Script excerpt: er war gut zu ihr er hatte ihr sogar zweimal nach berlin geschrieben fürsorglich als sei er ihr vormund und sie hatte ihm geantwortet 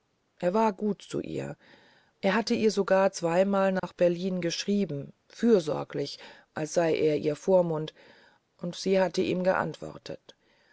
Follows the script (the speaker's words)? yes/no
yes